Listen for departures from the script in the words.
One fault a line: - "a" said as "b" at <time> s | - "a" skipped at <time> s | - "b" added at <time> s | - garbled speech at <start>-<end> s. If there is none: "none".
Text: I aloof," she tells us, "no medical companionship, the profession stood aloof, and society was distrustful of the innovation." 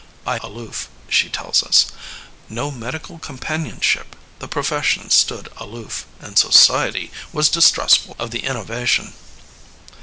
none